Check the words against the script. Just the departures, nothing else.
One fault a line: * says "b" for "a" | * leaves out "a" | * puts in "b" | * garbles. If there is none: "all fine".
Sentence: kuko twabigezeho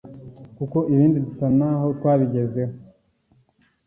* puts in "ibindi dusa n'aho"